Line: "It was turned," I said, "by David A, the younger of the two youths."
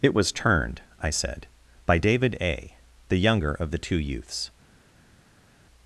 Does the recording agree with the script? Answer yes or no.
yes